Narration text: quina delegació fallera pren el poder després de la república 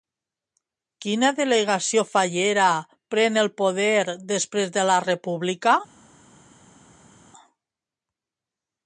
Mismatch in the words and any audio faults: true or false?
false